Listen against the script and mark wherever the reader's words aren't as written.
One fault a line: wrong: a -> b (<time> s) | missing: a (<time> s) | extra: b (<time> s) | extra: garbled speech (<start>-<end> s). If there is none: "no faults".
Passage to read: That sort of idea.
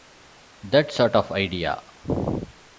no faults